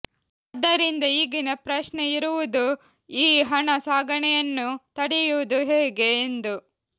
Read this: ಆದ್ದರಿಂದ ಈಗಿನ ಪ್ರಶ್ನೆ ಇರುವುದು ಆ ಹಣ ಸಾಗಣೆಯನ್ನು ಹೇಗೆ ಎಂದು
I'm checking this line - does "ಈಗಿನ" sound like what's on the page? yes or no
yes